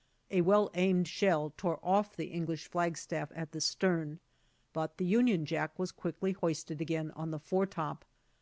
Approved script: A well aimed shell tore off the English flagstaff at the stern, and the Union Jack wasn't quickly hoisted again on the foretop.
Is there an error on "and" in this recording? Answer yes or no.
yes